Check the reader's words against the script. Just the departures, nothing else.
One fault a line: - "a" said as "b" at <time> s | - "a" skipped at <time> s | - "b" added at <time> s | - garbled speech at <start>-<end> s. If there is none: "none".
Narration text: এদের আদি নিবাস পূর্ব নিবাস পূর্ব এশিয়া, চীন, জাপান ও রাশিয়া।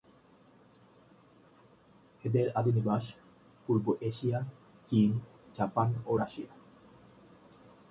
- "নিবাস পূর্ব" skipped at 3.9 s